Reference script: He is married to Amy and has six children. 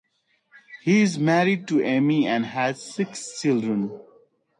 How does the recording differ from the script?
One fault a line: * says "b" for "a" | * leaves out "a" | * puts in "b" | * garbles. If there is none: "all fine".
all fine